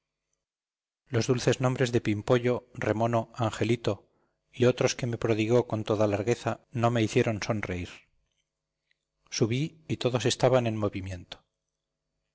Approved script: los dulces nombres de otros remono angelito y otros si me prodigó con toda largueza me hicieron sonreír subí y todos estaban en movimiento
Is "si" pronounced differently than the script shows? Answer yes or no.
yes